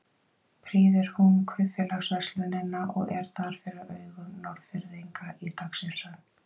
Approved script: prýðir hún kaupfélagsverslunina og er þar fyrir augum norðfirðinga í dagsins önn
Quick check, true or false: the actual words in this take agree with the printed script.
true